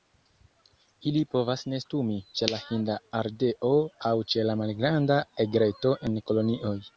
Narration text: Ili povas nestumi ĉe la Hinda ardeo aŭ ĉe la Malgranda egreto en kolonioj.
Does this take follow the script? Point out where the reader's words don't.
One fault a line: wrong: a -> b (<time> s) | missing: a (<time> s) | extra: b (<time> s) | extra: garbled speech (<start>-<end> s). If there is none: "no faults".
no faults